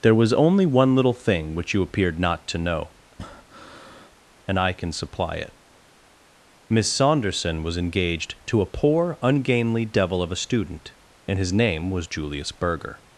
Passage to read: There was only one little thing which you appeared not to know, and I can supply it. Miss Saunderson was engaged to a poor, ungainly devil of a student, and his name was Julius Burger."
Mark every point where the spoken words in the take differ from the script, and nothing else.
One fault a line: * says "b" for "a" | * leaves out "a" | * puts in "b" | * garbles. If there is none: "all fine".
all fine